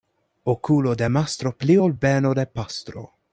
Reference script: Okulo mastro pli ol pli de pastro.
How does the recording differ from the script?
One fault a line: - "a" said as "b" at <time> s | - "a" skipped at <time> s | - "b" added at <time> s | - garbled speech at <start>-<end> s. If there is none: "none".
- "de" added at 0.9 s
- "pli" said as "beno" at 1.9 s